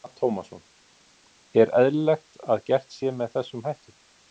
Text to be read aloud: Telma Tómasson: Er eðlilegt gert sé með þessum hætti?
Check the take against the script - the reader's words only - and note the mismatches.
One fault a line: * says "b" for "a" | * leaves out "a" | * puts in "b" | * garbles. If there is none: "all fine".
* puts in "að"